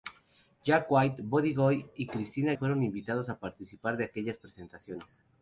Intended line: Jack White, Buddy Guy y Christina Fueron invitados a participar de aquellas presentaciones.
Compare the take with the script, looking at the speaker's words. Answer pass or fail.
pass